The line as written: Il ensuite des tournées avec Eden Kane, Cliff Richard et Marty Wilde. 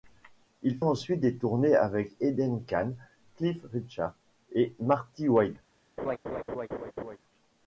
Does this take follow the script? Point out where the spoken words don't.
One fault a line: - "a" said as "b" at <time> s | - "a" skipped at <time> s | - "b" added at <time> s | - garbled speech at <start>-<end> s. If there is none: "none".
none